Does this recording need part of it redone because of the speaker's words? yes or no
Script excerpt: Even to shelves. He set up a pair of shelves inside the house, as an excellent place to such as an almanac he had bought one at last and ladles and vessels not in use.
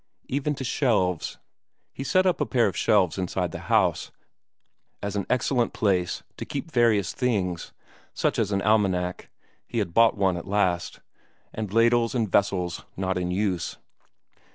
yes